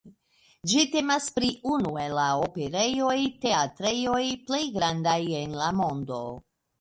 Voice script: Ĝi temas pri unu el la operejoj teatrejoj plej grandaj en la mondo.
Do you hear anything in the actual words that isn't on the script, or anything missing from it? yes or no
no